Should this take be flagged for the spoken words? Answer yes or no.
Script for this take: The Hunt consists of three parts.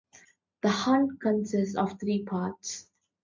no